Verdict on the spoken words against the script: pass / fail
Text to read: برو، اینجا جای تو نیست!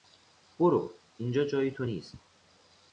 pass